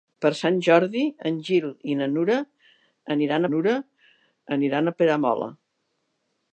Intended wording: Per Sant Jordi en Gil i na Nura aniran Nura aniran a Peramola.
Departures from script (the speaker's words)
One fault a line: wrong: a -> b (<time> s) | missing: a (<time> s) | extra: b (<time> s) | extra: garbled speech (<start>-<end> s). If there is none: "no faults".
no faults